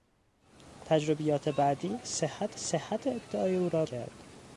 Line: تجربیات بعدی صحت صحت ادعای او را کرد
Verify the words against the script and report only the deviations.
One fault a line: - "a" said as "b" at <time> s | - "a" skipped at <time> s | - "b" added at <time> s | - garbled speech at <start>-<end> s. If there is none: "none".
none